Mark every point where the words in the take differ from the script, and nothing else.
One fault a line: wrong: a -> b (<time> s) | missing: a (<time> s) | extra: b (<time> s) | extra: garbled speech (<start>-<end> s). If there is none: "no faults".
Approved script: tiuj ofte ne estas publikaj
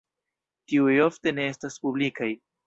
no faults